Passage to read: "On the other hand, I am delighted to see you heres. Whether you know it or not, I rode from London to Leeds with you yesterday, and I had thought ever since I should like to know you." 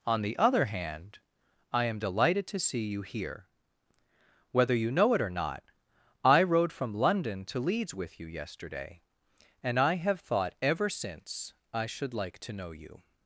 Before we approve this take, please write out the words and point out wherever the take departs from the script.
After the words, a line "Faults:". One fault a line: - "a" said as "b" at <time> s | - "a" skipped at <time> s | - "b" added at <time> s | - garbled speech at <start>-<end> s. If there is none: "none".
"On the other hand, I am delighted to see you here. Whether you know it or not, I rode from London to Leeds with you yesterday, and I have thought ever since I should like to know you."
Faults:
- "heres" said as "here" at 3.0 s
- "had" said as "have" at 9.9 s